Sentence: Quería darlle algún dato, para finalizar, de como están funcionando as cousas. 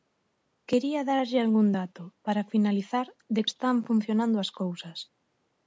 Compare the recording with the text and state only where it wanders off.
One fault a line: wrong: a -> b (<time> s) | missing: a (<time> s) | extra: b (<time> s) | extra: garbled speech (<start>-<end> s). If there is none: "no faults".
missing: como (3.4 s)